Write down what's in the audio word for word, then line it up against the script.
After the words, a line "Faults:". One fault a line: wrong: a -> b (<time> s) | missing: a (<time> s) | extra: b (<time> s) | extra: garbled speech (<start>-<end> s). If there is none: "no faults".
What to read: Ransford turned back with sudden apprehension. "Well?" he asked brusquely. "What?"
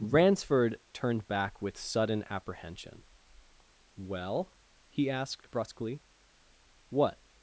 Ransford turned back with sudden apprehension. "Well?" he asked brusquely. "What?"
Faults:
no faults